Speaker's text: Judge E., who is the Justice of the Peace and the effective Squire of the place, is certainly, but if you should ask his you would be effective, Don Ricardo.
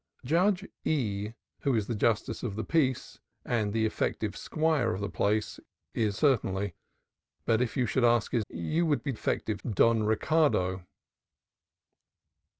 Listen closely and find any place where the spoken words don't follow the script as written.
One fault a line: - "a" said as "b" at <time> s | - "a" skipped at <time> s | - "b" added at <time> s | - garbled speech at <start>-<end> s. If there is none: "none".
none